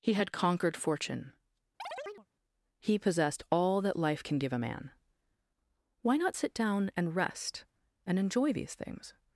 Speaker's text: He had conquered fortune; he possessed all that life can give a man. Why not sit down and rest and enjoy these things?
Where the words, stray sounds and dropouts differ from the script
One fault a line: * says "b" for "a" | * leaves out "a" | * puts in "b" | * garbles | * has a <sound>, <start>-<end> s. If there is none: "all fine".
* has a chirp, 1.8-2.3 s